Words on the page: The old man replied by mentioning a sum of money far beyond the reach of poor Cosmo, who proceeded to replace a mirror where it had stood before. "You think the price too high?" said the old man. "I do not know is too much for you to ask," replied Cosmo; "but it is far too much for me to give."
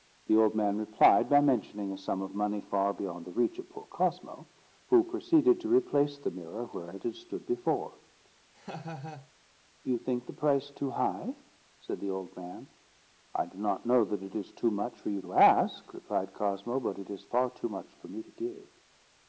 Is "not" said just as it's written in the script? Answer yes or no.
yes